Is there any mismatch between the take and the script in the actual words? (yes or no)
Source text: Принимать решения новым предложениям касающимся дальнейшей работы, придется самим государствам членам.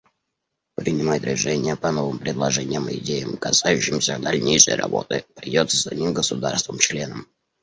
yes